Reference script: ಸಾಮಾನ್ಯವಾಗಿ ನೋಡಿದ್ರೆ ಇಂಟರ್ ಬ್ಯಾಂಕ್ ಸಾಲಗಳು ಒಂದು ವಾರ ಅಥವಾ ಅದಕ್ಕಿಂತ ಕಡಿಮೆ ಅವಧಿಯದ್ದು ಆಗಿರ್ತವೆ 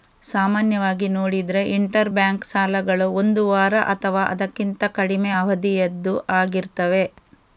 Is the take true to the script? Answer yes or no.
yes